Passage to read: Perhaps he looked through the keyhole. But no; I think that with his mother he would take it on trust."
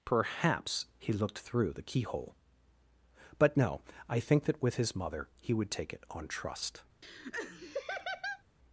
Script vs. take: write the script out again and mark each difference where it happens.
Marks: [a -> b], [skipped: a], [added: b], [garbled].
Perhaps he looked through the keyhole. But no; I think that with his mother he would take it on trust."